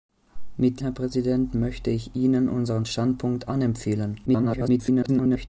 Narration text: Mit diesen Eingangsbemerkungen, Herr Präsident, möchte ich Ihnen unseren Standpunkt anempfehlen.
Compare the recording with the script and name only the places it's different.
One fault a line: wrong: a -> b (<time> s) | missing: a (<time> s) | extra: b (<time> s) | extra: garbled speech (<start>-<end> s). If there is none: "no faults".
missing: diesen Eingangsbemerkungen (0.8 s)
extra: garbled speech (4.3-5.5 s)